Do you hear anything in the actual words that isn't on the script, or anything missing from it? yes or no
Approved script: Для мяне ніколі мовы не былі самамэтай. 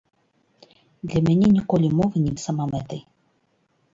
yes